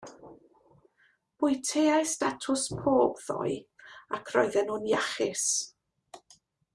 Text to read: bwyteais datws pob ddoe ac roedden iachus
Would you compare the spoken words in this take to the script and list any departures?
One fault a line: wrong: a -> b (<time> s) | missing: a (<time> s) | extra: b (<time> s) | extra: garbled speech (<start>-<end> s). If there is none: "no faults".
extra: nhw'n (4.7 s)